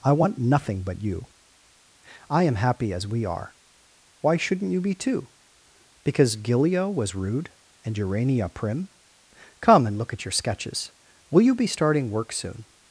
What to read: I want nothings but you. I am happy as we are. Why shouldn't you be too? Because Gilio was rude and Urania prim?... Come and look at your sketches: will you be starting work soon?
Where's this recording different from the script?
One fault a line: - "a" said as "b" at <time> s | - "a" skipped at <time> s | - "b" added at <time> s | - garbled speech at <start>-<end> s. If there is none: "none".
- "nothings" said as "nothing" at 0.4 s